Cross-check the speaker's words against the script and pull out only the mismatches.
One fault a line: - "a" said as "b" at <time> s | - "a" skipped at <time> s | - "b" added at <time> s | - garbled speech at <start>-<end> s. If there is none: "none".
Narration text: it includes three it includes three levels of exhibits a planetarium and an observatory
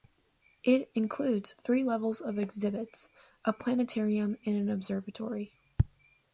- "it includes three" skipped at 1.8 s